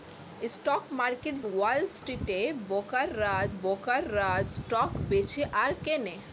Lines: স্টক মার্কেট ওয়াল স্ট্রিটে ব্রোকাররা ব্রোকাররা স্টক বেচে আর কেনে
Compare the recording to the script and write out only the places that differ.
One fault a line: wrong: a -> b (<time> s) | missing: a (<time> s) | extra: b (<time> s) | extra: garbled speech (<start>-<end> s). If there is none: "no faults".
no faults